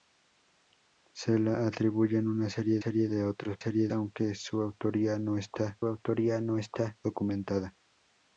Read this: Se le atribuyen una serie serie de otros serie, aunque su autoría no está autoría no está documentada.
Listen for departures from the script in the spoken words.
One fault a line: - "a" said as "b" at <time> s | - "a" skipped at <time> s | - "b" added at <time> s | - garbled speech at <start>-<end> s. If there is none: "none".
none